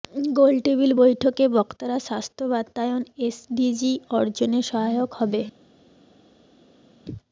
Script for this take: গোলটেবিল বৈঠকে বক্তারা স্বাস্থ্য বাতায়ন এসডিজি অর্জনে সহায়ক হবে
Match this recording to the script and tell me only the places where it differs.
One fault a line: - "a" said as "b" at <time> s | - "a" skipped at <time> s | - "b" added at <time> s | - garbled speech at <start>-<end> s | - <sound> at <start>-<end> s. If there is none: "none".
none